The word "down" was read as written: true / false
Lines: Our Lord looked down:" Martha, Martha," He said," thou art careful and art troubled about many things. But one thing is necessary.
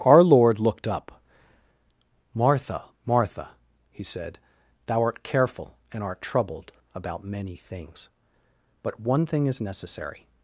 false